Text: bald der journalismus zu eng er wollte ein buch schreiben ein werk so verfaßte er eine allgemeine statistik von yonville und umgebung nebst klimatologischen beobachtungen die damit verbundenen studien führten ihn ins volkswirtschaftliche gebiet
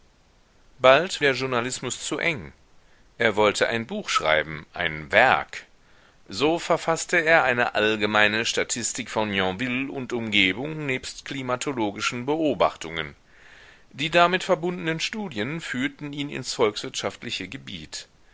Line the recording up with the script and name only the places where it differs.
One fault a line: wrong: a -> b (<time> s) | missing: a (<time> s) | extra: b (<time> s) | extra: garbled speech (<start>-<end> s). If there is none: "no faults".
no faults